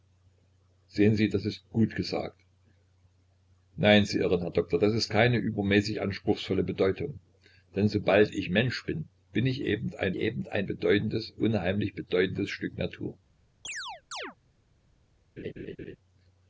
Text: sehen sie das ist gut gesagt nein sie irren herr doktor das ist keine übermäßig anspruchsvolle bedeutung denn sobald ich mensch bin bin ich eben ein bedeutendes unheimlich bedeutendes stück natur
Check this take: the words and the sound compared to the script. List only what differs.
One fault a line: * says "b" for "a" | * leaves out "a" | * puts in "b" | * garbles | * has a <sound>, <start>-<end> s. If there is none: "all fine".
* puts in "eben ein"
* has a chirp, 13.6-14.4 s
* has a laugh, 15.4-16.0 s